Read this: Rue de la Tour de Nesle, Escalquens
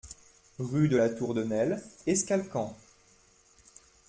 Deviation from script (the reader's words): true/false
false